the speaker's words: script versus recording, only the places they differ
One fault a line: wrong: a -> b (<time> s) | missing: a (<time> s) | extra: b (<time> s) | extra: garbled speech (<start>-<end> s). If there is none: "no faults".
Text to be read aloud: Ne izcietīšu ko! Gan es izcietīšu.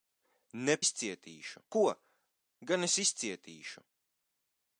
no faults